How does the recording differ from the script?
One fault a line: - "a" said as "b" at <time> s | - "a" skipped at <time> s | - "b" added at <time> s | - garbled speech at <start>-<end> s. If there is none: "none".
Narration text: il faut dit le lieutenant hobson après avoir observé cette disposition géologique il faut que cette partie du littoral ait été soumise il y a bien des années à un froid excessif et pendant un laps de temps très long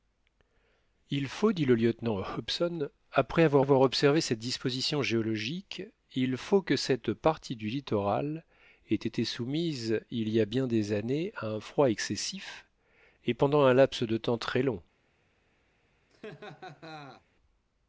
- "avoir" added at 3.6 s